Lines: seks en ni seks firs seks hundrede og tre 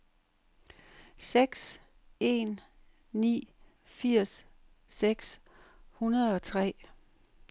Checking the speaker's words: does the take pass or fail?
fail